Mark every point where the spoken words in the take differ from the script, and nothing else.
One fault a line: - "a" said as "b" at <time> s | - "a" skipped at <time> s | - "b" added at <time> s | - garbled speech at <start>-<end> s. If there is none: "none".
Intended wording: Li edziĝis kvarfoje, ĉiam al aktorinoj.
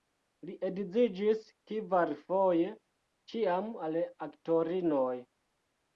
none